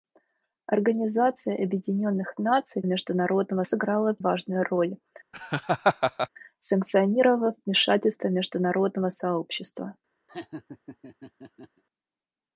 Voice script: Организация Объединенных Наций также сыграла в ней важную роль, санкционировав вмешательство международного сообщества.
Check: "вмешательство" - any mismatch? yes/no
no